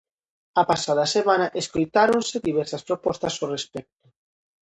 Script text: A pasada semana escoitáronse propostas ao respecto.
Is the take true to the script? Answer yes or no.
no